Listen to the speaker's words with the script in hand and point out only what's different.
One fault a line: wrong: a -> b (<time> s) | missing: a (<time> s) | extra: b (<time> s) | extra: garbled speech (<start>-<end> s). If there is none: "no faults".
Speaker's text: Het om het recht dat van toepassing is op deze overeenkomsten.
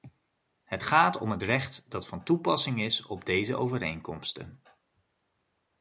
extra: gaat (0.8 s)